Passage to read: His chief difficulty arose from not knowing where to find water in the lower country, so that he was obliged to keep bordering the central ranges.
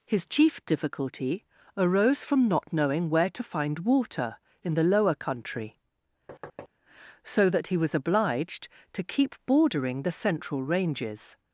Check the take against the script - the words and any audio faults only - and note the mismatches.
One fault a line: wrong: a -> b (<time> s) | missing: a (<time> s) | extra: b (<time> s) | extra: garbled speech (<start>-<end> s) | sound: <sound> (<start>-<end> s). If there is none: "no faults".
sound: thud (6.3-6.7 s)